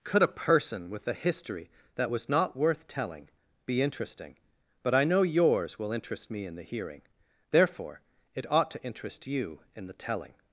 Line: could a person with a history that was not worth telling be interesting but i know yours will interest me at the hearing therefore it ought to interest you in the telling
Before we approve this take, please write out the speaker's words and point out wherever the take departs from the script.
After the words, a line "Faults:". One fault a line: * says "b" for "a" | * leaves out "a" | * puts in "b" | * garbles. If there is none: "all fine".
could a person with a history that was not worth telling be interesting but i know yours will interest me in the hearing therefore it ought to interest you in the telling
Faults:
* says "in" for "at"